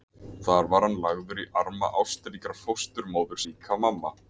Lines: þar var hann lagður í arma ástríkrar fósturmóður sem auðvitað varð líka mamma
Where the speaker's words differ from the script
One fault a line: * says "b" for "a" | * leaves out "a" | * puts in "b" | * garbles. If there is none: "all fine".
* leaves out "sem auðvitað varð"